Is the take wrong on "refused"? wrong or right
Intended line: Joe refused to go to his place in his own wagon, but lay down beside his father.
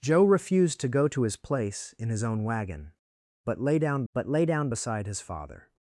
right